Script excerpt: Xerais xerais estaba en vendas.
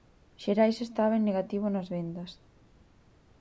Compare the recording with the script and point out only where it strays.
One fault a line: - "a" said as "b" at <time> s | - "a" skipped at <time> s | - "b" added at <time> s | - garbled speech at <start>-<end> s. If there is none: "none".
- "xerais" skipped at 0.8 s
- "negativo nas" added at 1.3 s